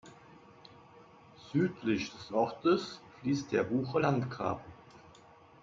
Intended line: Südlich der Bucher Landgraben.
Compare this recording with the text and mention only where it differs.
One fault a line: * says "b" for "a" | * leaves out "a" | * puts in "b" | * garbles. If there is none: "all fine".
* puts in "des Ortes fließt"